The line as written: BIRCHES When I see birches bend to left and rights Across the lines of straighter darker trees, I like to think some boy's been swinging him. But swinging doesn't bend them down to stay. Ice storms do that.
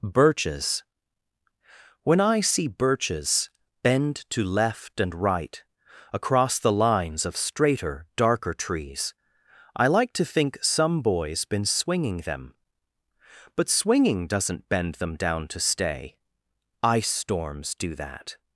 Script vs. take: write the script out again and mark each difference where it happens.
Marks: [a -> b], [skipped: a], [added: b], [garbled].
BIRCHES When I see birches bend to left and [rights -> right] Across the lines of straighter darker trees, I like to think some boy's been swinging [him. -> them] But swinging doesn't bend them down to stay. Ice storms do that.